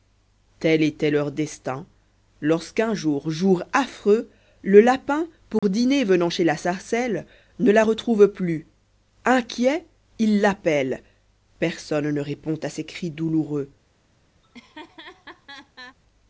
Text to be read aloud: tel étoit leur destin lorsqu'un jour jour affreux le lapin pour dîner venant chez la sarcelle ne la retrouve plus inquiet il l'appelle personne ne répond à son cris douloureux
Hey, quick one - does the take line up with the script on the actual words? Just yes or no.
no